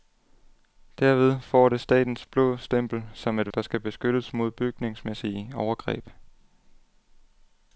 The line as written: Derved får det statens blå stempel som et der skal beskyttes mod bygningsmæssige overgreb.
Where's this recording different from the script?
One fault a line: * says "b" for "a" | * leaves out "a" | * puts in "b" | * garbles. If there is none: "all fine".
all fine